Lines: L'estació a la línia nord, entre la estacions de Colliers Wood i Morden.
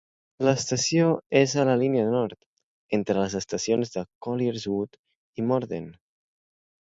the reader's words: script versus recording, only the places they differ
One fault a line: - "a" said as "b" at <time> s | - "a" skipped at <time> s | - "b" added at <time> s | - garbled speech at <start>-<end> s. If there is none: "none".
- "és" added at 1.4 s
- "la" said as "les" at 3.2 s